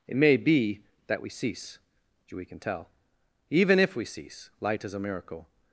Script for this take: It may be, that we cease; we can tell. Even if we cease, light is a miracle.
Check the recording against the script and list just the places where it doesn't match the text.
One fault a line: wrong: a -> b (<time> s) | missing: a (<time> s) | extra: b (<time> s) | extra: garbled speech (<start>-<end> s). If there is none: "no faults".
no faults